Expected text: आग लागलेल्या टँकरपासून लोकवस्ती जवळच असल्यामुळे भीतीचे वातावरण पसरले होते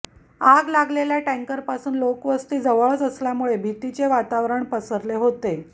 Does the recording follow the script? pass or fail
pass